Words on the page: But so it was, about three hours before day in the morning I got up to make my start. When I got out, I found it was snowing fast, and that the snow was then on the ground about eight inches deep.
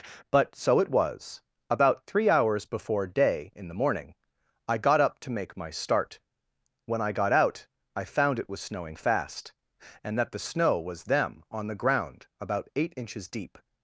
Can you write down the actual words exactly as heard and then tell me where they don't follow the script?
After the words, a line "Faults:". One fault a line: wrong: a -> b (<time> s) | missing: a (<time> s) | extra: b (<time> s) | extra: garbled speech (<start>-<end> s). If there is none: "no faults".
But so it was, about three hours before day in the morning I got up to make my start. When I got out, I found it was snowing fast, and that the snow was them on the ground about eight inches deep.
Faults:
wrong: then -> them (11.0 s)